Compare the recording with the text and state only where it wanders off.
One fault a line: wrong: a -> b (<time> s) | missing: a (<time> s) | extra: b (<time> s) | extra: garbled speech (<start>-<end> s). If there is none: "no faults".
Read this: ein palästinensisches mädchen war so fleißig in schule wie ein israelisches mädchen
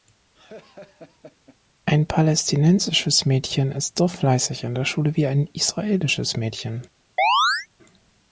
wrong: war -> ist (3.7 s)
extra: der (4.7 s)